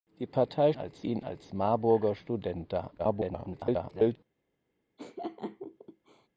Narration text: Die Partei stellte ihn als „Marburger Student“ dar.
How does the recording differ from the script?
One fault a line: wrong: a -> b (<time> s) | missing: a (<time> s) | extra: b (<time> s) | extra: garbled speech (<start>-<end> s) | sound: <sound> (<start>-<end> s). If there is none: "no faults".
wrong: stellte -> als (0.7 s)
extra: garbled speech (3.0-4.2 s)
sound: laugh (5.0-6.3 s)